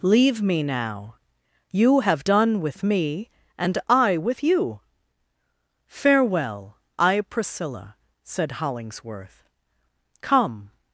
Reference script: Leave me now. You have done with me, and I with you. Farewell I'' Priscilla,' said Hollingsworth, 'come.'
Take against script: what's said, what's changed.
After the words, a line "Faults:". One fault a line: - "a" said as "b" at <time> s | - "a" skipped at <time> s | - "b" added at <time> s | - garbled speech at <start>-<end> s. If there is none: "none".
Leave me now. You have done with me, and I with you. Farewell I'' Priscilla,' said Hollingsworth, 'come.'
Faults:
none